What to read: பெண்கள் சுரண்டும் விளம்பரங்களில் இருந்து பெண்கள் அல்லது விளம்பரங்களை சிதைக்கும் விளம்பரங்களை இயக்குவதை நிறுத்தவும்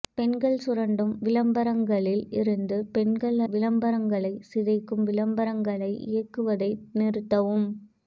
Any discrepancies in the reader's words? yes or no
yes